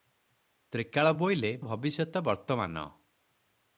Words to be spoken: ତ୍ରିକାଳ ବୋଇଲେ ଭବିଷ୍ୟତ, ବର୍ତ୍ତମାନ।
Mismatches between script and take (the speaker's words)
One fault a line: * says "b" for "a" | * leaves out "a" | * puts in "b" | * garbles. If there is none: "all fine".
all fine